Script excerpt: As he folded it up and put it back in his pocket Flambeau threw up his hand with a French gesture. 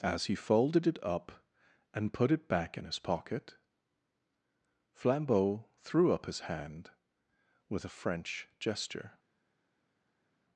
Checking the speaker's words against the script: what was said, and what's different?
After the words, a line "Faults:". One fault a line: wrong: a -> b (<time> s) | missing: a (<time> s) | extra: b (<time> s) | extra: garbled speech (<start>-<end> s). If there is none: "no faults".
As he folded it up and put it back in his pocket Flambeau threw up his hand with a French gesture.
Faults:
no faults